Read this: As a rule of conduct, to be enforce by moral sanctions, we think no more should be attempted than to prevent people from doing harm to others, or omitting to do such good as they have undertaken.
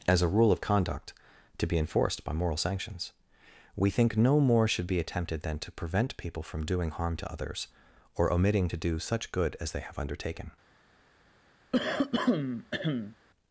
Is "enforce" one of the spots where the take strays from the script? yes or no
yes